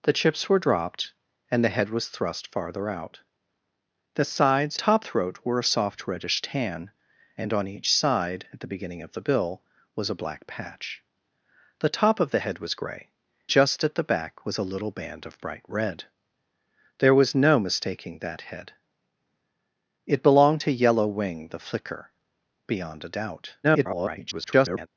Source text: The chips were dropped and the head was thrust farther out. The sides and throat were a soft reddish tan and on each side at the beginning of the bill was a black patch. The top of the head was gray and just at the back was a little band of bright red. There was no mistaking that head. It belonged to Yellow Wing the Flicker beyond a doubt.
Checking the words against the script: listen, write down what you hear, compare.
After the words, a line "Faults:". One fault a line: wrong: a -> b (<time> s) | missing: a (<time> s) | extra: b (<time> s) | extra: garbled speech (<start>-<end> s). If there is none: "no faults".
The chips were dropped and the head was thrust farther out. The sides top throat were a soft reddish tan and on each side at the beginning of the bill was a black patch. The top of the head was gray just at the back was a little band of bright red. There was no mistaking that head. It belonged to Yellow Wing the Flicker beyond a doubt. [garbled]
Faults:
wrong: and -> top (4.7 s)
missing: and (13.1 s)
extra: garbled speech (23.6-24.9 s)